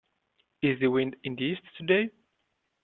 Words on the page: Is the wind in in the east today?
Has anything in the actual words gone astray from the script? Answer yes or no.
yes